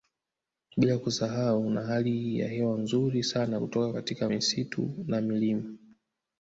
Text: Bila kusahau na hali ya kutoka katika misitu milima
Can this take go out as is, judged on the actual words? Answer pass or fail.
fail